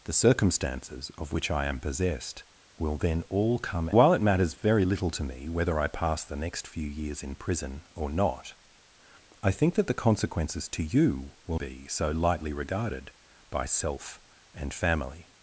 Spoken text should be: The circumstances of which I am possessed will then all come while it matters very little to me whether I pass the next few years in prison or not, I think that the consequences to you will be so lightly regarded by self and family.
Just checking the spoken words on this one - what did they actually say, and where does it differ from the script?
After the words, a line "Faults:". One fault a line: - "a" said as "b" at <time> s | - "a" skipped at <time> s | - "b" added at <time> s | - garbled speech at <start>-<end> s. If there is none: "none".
The circumstances of which I am possessed will then all come while it matters very little to me whether I pass the next few years in prison or not, I think that the consequences to you will be so lightly regarded by self and family.
Faults:
none